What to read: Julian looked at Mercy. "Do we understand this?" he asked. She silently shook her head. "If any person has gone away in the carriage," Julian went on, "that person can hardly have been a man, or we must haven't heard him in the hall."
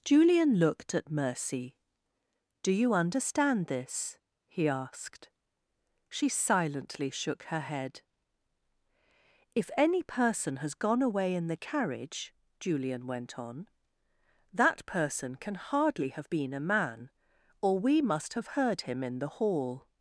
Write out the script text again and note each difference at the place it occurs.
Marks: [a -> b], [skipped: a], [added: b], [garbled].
Julian looked at Mercy. "Do [we -> you] understand this?" he asked. She silently shook her head. "If any person has gone away in the carriage," Julian went on, "that person can hardly have been a man, or we must [haven't -> have] heard him in the hall."